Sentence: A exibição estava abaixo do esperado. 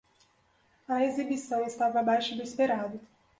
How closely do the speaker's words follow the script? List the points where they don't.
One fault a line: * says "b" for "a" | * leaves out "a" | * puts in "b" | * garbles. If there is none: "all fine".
all fine